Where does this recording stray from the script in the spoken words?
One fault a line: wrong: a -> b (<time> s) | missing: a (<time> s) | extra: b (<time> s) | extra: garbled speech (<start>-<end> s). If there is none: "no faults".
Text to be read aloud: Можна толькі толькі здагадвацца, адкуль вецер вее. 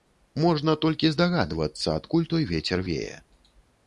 missing: толькі (1.1 s)
extra: той (2.3 s)